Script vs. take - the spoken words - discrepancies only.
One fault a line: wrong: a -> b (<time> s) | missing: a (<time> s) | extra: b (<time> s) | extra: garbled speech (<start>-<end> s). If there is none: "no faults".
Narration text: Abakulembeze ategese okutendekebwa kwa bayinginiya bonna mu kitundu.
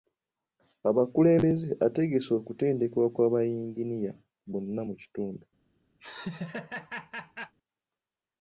no faults